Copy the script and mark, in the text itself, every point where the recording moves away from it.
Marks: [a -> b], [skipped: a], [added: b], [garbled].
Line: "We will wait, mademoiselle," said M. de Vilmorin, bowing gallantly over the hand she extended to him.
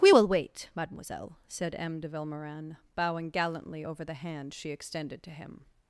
"We will wait, mademoiselle," said M. de Vilmorin, bowing gallantly over the hand she extended to him.